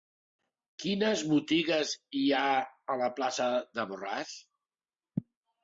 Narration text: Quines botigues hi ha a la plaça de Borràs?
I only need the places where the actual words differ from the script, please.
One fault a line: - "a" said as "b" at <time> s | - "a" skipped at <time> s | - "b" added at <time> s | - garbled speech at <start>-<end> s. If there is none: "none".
none